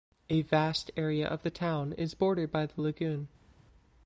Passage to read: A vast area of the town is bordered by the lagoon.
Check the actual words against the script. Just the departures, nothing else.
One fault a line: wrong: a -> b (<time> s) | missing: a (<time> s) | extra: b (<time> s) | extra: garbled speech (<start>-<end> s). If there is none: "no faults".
no faults